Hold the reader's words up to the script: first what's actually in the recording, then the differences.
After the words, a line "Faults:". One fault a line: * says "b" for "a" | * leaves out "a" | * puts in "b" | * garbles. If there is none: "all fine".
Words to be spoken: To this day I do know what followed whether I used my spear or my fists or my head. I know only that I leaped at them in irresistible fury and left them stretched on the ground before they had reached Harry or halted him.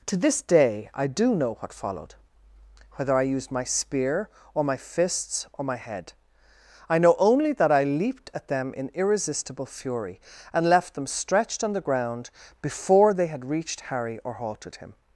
To this day I do know what followed whether I used my spear or my fists or my head. I know only that I leaped at them in irresistible fury and left them stretched on the ground before they had reached Harry or halted him.
Faults:
all fine